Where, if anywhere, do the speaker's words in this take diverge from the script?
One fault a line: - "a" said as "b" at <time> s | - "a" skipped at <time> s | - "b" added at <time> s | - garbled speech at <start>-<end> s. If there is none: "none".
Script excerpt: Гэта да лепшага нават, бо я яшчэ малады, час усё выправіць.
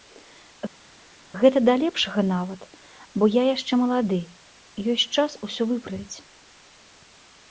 - "ёсць" added at 5.0 s